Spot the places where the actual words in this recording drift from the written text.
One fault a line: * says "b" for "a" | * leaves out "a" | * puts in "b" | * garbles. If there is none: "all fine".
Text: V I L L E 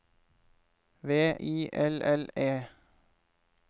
all fine